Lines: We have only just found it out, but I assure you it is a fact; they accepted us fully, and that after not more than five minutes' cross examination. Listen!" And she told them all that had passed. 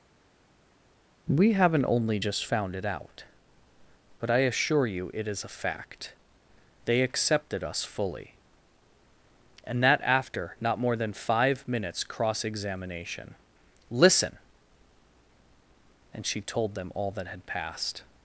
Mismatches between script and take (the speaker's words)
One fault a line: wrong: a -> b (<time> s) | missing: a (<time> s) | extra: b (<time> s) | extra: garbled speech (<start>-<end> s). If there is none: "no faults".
wrong: have -> haven't (1.5 s)